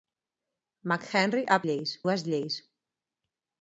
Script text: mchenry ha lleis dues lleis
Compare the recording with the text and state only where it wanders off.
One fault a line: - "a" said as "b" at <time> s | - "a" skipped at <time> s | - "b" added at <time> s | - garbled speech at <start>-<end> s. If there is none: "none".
none